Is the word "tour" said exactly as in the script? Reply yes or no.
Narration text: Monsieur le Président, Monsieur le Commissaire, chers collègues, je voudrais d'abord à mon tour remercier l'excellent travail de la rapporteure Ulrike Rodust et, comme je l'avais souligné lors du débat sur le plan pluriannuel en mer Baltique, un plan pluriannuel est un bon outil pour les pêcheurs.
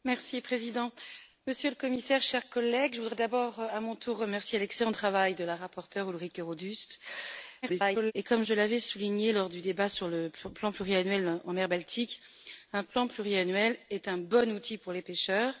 yes